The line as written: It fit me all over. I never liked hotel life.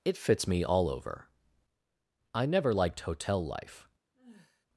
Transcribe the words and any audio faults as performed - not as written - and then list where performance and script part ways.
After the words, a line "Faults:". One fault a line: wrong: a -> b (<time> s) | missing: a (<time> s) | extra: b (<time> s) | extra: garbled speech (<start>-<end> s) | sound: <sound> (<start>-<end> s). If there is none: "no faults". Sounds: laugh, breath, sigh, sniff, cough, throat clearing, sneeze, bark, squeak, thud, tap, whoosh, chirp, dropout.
It fits me all over. I never liked hotel life.
Faults:
wrong: fit -> fits (0.2 s)
sound: sigh (4.1-4.7 s)